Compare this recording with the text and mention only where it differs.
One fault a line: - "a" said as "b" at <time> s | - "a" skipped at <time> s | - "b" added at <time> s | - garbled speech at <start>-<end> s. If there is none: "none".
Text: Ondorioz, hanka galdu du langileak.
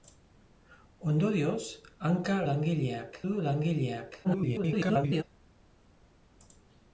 - "galdu" said as "langileak" at 2.5 s
- garbled speech at 4.2-5.2 s